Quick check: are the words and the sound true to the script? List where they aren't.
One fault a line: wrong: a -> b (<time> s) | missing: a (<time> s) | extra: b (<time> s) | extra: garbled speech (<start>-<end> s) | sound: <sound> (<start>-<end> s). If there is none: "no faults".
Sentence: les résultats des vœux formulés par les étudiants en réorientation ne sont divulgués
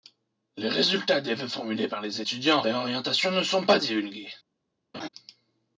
extra: pas (3.6 s)
sound: laugh (4.9-5.1 s)